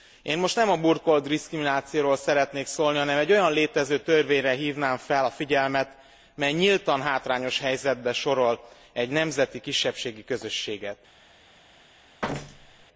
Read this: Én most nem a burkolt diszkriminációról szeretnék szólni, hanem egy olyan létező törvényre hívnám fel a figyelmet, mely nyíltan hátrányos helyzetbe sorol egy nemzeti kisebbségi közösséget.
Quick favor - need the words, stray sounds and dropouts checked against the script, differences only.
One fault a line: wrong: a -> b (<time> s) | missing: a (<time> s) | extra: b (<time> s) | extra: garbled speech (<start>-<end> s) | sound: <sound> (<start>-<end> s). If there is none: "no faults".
sound: thud (12.2-12.9 s)